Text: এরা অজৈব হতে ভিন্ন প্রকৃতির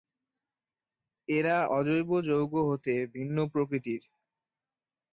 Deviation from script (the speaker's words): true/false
true